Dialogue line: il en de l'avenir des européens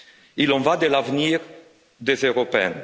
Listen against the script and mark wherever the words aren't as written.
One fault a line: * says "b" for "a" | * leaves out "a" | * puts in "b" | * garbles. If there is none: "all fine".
* puts in "va"